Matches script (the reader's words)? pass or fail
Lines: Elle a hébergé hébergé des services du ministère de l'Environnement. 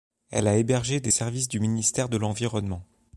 fail